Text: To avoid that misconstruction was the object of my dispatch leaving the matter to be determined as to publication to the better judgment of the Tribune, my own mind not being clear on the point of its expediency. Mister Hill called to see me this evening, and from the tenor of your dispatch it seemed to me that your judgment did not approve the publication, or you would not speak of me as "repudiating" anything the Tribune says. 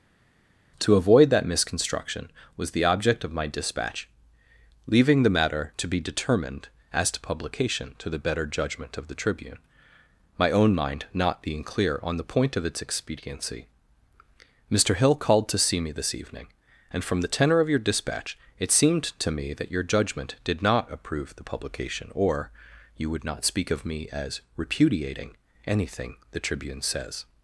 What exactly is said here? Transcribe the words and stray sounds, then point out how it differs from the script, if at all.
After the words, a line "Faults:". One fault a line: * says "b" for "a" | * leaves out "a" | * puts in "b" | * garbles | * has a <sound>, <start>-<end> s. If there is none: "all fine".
To avoid that misconstruction was the object of my dispatch leaving the matter to be determined as to publication to the better judgment of the Tribune, my own mind not being clear on the point of its expediency. Mister Hill called to see me this evening, and from the tenor of your dispatch it seemed to me that your judgment did not approve the publication, or you would not speak of me as "repudiating" anything the Tribune says.
Faults:
all fine